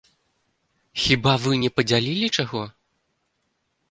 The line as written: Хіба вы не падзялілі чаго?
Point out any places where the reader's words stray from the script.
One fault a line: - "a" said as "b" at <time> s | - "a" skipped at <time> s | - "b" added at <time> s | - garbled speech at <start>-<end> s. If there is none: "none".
none